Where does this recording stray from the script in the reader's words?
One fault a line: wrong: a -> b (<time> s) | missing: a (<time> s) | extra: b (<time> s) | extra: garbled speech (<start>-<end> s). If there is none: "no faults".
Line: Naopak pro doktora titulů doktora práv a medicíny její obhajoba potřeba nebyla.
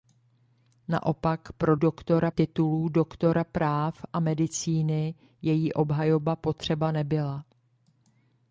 no faults